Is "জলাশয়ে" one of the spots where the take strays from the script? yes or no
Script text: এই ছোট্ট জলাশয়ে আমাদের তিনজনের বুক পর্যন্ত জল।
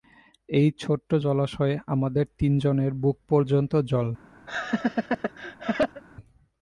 no